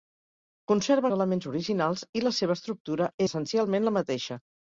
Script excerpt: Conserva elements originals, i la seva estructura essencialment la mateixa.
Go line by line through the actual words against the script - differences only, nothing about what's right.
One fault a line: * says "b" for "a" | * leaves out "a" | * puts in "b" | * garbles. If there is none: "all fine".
all fine